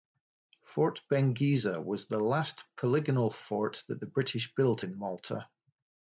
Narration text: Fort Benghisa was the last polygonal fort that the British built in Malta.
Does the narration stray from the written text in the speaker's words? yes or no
no